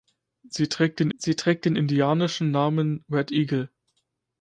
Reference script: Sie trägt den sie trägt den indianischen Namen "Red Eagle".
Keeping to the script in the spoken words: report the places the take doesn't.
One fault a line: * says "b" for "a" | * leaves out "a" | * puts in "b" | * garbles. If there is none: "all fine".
all fine